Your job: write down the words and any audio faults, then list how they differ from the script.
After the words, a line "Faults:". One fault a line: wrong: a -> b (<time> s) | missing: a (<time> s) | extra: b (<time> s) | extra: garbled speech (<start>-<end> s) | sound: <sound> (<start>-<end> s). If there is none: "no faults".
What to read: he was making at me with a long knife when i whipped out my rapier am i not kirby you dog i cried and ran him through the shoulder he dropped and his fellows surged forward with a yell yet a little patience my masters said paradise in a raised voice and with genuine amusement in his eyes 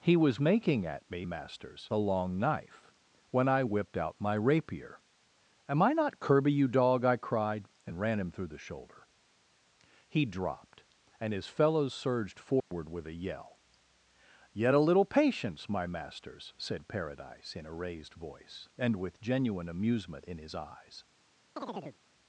he was making at me masters a long knife when i whipped out my rapier am i not kirby you dog i cried and ran him through the shoulder he dropped and his fellows surged forward with a yell yet a little patience my masters said paradise in a raised voice and with genuine amusement in his eyes
Faults:
wrong: with -> masters (1.2 s)
sound: dropout (12.6-12.7 s)
sound: chirp (21.6-22.0 s)